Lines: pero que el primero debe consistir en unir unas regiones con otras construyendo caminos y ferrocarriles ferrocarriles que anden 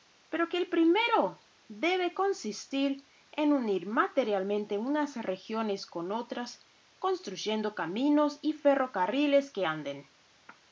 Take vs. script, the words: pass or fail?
fail